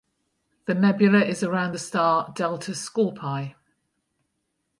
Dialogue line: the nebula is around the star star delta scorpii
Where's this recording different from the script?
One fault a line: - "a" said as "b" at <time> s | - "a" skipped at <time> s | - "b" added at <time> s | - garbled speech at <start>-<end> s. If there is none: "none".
- "star" skipped at 2.3 s